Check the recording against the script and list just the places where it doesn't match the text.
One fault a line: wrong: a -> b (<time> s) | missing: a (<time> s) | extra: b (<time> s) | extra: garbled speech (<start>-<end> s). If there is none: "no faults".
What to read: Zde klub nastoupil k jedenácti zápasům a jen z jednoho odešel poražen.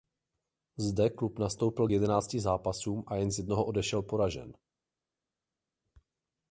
no faults